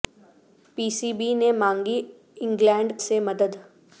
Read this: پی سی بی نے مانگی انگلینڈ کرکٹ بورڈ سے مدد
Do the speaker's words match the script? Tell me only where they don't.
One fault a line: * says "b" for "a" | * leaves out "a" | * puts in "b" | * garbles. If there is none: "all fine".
* leaves out "کرکٹ بورڈ"